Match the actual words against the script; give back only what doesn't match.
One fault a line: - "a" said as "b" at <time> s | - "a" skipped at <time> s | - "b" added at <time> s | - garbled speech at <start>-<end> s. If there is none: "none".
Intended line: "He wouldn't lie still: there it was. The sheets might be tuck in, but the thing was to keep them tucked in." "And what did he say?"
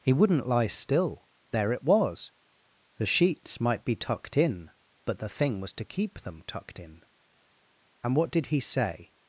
- "tuck" said as "tucked" at 4.0 s